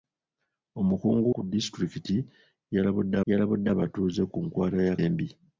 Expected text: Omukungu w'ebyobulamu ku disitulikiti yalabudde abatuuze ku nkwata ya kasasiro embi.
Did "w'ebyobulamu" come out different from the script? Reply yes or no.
yes